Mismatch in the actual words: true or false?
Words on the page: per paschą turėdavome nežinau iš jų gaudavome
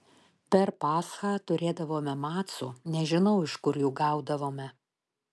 true